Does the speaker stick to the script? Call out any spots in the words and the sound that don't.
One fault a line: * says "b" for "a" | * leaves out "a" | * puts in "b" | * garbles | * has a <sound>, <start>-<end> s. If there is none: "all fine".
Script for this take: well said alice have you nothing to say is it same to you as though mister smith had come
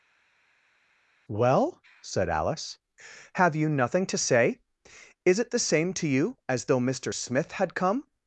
* puts in "the"